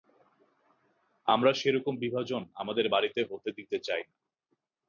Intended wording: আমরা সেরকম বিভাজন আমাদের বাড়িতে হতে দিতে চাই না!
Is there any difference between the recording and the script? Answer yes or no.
no